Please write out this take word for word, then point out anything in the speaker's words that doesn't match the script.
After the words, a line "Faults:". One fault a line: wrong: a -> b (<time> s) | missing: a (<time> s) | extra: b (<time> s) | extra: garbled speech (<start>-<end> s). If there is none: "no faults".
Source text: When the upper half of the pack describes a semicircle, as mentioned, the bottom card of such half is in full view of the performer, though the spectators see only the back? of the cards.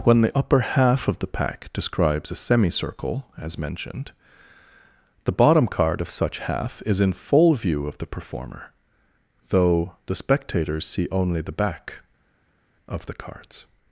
When the upper half of the pack describes a semicircle, as mentioned, the bottom card of such half is in full view of the performer, though the spectators see only the back? of the cards.
Faults:
no faults